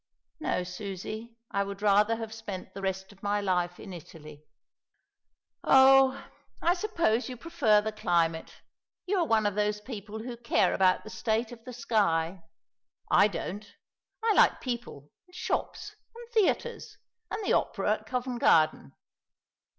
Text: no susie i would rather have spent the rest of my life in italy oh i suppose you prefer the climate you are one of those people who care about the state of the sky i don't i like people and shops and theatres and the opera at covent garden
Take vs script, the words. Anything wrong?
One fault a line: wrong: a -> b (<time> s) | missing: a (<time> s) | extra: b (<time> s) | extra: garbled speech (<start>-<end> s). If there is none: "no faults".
no faults